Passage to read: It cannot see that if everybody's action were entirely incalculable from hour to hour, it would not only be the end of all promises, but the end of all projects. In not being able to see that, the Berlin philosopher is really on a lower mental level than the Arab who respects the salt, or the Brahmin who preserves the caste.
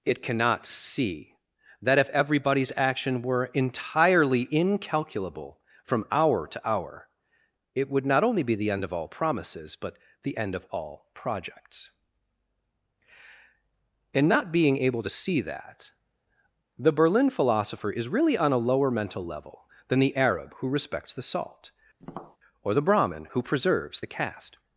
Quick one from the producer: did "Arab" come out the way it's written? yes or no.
yes